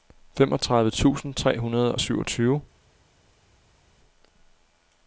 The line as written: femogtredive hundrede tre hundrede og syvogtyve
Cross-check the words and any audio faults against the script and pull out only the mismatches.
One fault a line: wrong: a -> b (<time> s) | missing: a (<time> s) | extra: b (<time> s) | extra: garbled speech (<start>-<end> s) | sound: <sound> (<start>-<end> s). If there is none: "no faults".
wrong: hundrede -> tusind (0.9 s)